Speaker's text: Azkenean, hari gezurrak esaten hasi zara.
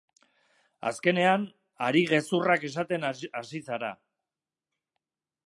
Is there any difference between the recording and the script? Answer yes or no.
no